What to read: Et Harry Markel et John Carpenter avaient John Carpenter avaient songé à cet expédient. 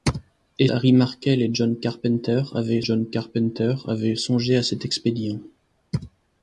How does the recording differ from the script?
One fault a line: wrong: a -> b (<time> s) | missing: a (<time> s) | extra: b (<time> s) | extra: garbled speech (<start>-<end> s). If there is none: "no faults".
no faults